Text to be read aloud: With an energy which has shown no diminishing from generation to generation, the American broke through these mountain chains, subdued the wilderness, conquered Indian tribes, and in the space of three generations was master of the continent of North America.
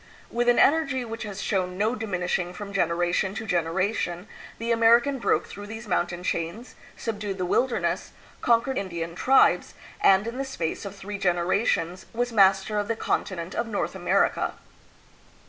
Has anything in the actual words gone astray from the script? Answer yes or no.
no